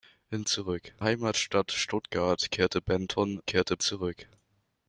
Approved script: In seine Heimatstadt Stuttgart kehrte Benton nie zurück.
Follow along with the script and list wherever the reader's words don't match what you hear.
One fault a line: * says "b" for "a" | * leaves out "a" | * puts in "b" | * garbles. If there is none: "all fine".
* says "zurück" for "seine"
* says "kehrte" for "nie"